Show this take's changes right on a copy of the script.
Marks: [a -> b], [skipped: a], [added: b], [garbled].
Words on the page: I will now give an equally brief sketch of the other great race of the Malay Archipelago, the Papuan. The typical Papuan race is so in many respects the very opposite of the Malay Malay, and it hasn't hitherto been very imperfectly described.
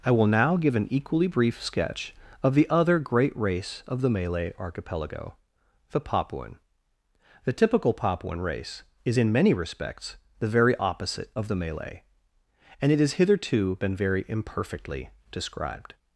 I will now give an equally brief sketch of the other great race of the Malay Archipelago, the Papuan. The typical Papuan race is [skipped: so] in many respects the very opposite of the Malay [skipped: Malay,] and it [hasn't -> has] hitherto been very imperfectly described.